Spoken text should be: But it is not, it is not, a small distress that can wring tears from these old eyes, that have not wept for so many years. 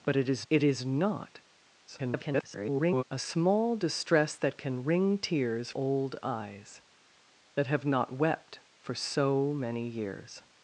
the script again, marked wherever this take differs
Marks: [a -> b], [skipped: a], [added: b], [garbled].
But it is [skipped: not,] it is not, [garbled] a small distress that can wring tears [skipped: from these] old eyes, that have not wept for so many years.